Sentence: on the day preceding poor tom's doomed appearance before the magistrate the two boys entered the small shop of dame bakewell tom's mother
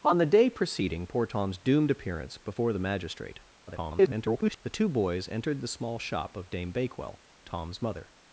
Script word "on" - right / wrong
right